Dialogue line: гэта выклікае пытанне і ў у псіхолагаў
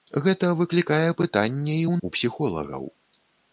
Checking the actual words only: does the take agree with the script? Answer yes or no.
yes